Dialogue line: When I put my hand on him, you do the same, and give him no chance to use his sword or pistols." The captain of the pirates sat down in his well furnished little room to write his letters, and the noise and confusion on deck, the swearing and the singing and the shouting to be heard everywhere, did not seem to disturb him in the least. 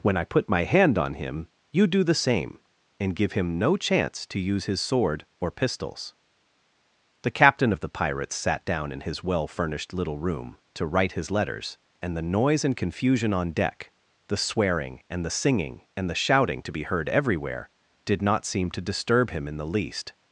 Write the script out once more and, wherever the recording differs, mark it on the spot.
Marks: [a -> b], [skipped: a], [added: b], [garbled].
When I put my hand on him, you do the same, and give him no chance to use his sword or pistols." The captain of the pirates sat down in his well furnished little room to write his letters, and the noise and confusion on deck, the swearing and the singing and the shouting to be heard everywhere, did not seem to disturb him in the least.